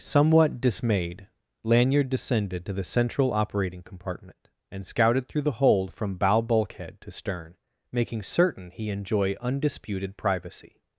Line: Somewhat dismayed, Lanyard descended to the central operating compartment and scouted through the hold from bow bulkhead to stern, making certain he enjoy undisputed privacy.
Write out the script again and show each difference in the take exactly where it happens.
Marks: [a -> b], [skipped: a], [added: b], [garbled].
Somewhat dismayed, Lanyard descended to the central operating compartment and scouted through the hold from bow bulkhead to stern, making certain he enjoy undisputed privacy.